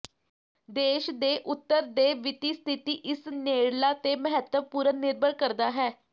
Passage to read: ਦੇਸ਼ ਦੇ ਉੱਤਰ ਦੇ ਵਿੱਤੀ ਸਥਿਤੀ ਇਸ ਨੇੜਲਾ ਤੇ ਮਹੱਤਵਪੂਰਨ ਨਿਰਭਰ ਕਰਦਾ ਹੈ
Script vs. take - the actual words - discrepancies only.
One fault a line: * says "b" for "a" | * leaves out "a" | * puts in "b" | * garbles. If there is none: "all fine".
all fine